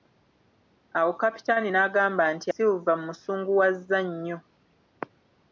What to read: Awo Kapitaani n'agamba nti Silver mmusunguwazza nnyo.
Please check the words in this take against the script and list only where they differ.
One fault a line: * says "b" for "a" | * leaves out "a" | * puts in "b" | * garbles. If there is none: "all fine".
all fine